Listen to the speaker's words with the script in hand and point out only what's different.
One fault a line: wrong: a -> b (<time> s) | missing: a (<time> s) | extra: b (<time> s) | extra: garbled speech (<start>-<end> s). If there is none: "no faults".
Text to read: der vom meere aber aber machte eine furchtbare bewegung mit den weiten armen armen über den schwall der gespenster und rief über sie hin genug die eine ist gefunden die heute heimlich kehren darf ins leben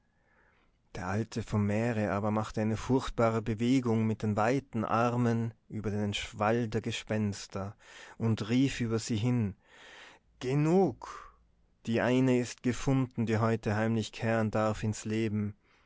extra: alte (1.1 s)
missing: aber (2.3 s)
missing: armen (5.5 s)